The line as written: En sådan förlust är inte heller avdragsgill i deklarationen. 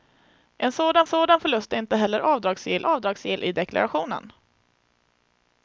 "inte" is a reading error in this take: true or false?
false